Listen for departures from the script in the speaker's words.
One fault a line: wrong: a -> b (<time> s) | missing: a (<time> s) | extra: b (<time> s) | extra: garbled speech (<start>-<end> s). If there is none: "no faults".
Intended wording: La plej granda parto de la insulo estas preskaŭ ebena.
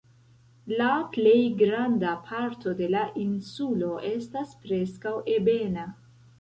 no faults